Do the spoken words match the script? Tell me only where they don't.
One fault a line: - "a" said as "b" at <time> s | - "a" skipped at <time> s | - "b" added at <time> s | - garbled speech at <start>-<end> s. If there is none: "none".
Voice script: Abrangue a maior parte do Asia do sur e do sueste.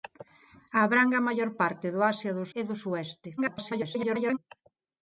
- "sur" skipped at 2.5 s
- garbled speech at 3.4-4.4 s